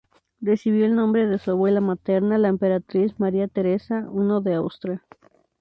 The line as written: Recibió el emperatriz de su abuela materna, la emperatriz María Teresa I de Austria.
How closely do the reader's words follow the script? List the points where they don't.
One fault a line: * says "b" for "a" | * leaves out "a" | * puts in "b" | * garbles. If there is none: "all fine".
* says "nombre" for "emperatriz"